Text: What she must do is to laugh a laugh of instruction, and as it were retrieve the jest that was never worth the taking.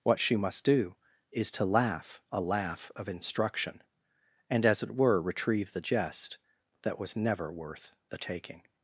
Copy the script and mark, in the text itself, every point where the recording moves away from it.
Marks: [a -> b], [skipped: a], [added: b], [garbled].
What she must do is to laugh a laugh of instruction, and as it were retrieve the jest that was never worth the taking.